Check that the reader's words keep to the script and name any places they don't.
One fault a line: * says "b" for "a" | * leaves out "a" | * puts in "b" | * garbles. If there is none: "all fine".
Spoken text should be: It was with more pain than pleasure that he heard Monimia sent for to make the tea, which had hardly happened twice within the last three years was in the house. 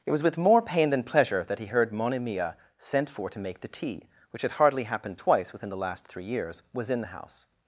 all fine